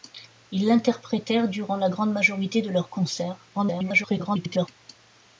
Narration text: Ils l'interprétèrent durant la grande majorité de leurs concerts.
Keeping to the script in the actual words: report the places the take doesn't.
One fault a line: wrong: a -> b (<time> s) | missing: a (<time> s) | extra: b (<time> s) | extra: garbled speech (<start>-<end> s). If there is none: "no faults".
extra: garbled speech (3.5-4.7 s)